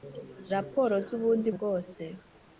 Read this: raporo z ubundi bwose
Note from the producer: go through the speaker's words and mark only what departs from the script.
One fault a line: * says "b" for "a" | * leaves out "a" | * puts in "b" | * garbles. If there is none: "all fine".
all fine